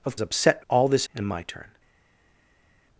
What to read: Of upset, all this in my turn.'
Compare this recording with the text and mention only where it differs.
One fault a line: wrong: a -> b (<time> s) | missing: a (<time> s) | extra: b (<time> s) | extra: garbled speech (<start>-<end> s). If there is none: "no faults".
no faults